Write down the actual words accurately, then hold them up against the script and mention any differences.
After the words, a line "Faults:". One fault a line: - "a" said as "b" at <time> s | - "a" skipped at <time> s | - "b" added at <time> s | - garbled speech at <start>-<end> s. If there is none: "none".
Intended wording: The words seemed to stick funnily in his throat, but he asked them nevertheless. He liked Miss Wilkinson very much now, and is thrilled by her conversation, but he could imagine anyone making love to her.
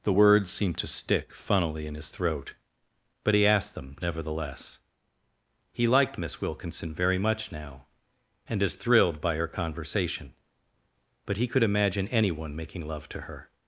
The words seemed to stick funnily in his throat, but he asked them nevertheless. He liked Miss Wilkinson very much now, and is thrilled by her conversation, but he could imagine anyone making love to her.
Faults:
none